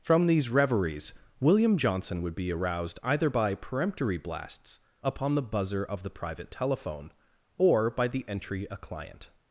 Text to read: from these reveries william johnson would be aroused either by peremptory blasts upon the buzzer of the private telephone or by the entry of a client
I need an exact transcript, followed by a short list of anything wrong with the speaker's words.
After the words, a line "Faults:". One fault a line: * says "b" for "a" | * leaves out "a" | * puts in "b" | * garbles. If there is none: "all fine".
from these reveries william johnson would be aroused either by peremptory blasts upon the buzzer of the private telephone or by the entry a client
Faults:
* leaves out "of"